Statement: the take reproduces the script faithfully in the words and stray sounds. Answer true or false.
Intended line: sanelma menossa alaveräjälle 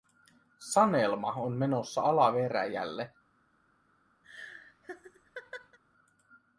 false